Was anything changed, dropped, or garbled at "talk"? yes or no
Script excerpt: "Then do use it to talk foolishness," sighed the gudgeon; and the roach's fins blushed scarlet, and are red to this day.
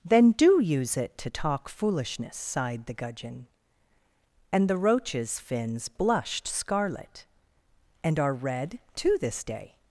no